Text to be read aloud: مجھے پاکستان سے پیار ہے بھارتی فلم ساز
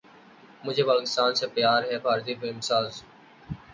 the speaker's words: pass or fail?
pass